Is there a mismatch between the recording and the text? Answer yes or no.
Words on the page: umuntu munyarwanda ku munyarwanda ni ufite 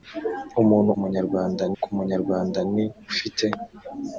no